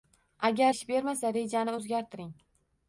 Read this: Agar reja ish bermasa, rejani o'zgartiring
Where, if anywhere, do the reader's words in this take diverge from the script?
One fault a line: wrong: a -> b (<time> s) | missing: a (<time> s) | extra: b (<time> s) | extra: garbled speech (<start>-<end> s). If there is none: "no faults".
missing: reja (0.7 s)